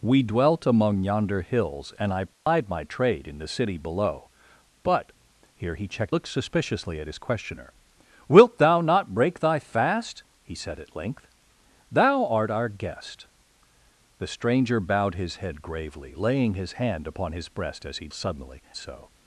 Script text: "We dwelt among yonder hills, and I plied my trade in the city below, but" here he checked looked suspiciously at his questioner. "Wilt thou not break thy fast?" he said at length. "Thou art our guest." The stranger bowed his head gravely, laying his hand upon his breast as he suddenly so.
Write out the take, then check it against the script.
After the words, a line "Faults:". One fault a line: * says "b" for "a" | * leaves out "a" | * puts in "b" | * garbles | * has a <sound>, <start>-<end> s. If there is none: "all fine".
"We dwelt among yonder hills, and I plied my trade in the city below, but" here he checked looked suspiciously at his questioner. "Wilt thou not break thy fast?" he said at length. "Thou art our guest." The stranger bowed his head gravely, laying his hand upon his breast as he suddenly so.
Faults:
* has a dropout, 2.3-2.5 s